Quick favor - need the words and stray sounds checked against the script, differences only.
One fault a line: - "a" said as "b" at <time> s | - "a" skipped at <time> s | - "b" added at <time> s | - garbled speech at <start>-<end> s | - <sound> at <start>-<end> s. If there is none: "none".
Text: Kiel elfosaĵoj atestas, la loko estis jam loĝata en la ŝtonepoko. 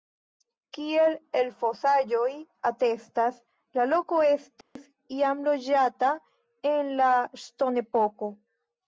- dropout at 4.6-4.8 s